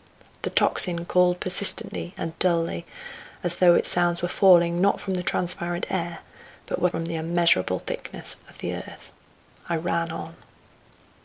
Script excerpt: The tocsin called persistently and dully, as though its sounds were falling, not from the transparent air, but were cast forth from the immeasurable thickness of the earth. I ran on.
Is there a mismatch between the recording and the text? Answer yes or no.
yes